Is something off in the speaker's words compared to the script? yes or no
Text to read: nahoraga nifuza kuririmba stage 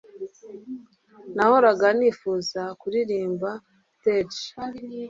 no